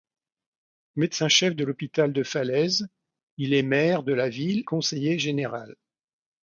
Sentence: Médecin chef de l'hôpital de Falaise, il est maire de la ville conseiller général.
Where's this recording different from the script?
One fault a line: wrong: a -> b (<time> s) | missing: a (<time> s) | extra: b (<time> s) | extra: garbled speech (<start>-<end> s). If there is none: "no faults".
no faults